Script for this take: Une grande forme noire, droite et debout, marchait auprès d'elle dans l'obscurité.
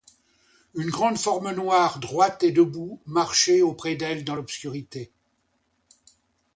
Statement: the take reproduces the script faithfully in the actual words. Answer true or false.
true